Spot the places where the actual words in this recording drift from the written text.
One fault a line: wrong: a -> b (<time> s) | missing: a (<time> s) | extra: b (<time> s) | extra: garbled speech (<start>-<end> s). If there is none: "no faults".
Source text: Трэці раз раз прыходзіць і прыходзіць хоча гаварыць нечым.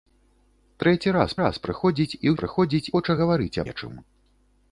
no faults